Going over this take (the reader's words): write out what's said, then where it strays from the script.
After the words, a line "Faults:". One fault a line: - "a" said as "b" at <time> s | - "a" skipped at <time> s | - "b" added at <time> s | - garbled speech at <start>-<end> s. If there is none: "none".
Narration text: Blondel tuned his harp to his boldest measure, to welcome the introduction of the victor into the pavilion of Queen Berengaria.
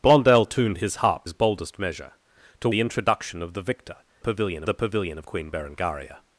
Blondel tuned his harp his boldest measure, to the introduction of the victor pavilion the pavilion of Queen Berengaria.
Faults:
- "to" skipped at 1.3 s
- "welcome" skipped at 2.7 s
- "into" said as "pavilion" at 4.2 s